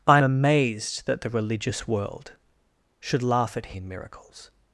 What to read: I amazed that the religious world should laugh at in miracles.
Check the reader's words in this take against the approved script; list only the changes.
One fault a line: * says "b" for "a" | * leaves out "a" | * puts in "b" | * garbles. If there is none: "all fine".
all fine